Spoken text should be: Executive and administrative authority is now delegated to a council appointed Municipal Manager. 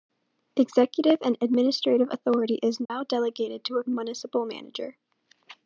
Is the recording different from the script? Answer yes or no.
yes